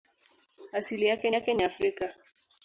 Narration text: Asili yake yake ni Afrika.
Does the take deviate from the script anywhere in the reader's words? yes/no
no